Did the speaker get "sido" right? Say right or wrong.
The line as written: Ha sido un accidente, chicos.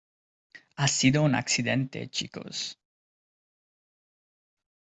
right